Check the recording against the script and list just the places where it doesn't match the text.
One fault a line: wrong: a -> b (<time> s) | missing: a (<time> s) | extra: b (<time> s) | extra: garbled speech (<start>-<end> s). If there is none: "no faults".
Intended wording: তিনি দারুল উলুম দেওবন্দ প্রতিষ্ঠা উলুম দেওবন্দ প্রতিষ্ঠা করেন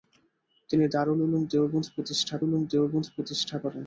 no faults